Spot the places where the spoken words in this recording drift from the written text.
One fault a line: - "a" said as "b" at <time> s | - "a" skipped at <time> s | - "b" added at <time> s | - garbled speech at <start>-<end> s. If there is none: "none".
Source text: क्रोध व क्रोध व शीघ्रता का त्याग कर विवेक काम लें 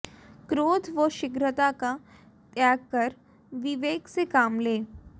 - "क्रोध व" skipped at 1.1 s
- "से" added at 4.1 s